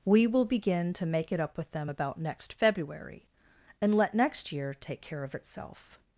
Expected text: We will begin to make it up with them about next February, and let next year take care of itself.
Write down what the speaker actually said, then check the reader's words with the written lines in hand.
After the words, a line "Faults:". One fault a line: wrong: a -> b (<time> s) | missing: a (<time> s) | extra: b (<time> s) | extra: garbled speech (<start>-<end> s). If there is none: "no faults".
We will begin to make it up with them about next February, and let next year take care of itself.
Faults:
no faults